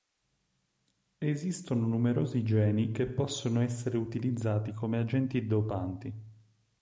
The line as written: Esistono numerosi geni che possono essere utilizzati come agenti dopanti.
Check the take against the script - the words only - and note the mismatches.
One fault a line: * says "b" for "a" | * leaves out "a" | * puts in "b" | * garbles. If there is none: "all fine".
all fine